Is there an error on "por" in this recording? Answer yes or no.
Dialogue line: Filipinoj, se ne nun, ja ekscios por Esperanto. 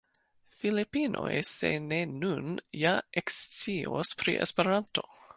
yes